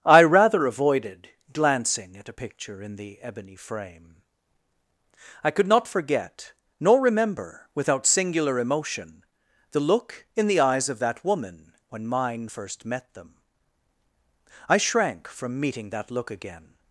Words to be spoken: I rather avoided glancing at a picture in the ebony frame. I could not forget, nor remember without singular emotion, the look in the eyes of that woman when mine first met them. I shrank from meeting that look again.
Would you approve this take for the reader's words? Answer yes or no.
yes